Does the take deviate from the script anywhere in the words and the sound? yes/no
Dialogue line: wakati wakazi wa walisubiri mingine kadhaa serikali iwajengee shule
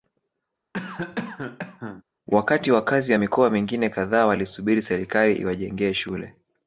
yes